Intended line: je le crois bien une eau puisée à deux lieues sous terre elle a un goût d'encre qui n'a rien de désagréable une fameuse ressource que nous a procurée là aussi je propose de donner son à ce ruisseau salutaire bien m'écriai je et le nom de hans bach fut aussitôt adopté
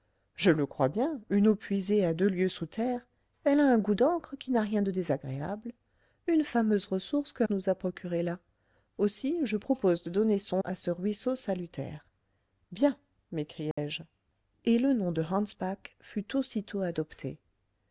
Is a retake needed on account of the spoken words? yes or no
no